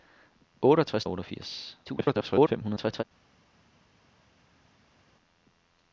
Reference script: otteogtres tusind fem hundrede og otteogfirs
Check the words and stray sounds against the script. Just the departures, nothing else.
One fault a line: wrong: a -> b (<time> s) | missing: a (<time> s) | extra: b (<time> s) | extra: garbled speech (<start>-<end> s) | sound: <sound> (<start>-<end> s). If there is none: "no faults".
missing: tusind fem hundrede (1.1 s)
extra: garbled speech (1.9-3.0 s)